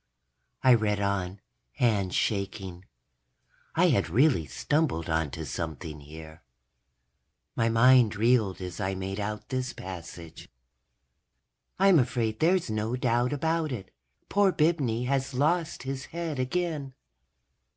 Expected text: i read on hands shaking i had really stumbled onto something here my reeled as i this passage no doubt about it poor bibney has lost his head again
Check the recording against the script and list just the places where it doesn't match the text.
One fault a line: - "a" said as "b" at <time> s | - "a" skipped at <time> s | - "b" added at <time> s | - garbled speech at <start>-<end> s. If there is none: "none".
- "mind" added at 7.7 s
- "made out" added at 8.9 s
- "i'm afraid there's" added at 11.8 s